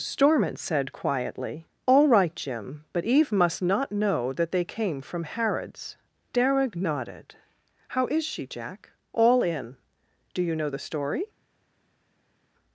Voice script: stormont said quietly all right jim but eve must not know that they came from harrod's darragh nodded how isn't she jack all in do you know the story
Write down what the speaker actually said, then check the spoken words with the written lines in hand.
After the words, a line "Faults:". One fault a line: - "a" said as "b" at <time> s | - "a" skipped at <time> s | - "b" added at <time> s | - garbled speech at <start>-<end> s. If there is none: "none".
stormont said quietly all right jim but eve must not know that they came from harrod's darragh nodded how is she jack all in do you know the story
Faults:
- "isn't" said as "is" at 8.1 s